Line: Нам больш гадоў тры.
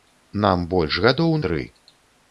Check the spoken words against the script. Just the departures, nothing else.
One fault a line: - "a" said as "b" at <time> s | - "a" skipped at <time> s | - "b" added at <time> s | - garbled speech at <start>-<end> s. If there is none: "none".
none